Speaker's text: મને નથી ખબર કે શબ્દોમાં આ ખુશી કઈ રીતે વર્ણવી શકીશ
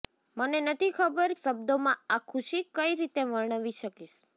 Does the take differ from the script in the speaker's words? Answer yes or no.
yes